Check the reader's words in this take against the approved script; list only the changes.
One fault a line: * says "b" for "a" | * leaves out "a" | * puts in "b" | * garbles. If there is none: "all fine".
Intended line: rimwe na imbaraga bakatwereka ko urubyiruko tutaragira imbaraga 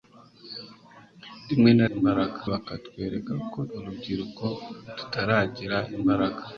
all fine